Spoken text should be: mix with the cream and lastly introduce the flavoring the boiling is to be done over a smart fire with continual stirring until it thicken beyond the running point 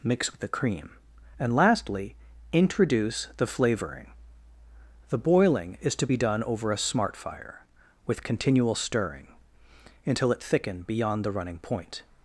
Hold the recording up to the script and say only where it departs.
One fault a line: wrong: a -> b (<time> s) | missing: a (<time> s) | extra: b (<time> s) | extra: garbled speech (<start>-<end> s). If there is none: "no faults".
no faults